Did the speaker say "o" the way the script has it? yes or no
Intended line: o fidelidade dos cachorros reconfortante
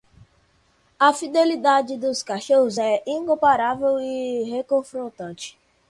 no